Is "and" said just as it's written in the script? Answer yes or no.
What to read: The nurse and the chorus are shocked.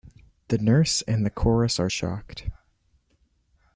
yes